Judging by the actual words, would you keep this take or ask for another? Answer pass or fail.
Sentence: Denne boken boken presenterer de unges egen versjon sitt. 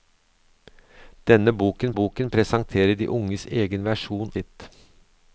pass